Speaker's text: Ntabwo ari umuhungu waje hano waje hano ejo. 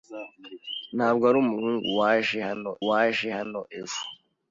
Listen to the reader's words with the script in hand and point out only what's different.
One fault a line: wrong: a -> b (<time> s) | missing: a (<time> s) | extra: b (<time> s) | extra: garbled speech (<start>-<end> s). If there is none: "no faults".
no faults